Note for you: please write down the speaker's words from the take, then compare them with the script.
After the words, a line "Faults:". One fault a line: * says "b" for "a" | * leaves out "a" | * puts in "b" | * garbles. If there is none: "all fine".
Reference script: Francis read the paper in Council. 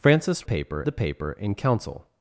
Francis paper the paper in Council.
Faults:
* says "paper" for "read"